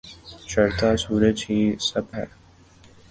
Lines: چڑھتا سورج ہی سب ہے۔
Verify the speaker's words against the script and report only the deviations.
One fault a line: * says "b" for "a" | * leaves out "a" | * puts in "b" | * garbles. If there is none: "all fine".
all fine